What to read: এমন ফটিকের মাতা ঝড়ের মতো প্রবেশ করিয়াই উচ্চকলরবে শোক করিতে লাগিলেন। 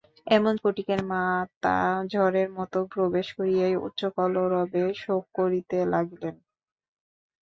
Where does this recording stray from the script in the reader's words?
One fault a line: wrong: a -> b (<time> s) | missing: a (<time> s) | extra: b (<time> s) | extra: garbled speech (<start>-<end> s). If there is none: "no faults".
no faults